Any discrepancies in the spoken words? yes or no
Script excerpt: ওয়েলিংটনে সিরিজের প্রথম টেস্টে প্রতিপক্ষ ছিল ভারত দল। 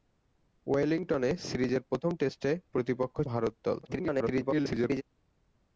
yes